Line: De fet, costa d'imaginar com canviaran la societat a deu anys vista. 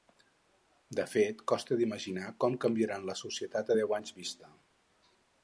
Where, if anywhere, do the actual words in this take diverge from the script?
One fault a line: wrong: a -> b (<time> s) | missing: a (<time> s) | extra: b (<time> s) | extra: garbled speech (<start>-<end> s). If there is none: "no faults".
no faults